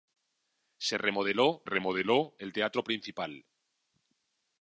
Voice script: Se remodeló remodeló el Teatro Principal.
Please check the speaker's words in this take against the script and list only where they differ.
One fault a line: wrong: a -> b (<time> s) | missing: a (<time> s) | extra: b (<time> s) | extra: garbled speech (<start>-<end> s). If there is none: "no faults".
no faults